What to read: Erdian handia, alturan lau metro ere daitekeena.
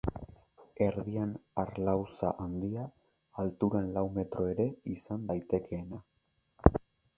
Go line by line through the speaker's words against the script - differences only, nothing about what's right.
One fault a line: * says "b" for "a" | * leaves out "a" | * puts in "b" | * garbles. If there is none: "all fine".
* puts in "harlauza"
* puts in "izan"